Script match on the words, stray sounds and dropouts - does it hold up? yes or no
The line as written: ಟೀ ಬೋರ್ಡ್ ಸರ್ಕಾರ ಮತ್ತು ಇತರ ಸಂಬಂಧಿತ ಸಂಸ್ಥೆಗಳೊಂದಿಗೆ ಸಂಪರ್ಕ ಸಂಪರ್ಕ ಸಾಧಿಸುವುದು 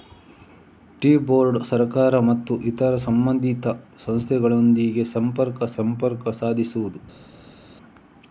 yes